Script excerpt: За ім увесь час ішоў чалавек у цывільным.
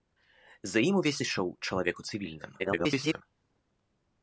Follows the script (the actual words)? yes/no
no